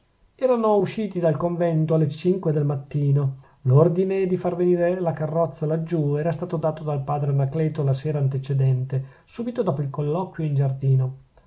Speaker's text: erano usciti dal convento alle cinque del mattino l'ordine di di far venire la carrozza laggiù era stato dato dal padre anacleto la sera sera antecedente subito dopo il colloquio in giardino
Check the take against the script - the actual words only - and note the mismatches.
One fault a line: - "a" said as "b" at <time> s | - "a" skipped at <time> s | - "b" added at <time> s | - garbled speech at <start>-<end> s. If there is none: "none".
- "di" skipped at 4.4 s
- "sera" skipped at 8.2 s